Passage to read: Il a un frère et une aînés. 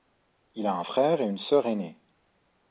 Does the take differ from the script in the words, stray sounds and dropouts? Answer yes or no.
yes